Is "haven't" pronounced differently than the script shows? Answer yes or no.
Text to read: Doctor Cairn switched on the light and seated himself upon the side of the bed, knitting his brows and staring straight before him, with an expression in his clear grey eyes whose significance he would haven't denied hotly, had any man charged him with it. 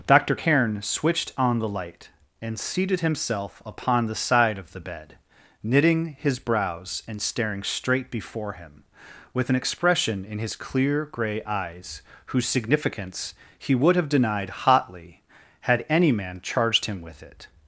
yes